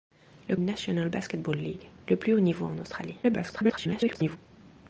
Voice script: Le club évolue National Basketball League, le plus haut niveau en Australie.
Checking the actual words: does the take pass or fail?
fail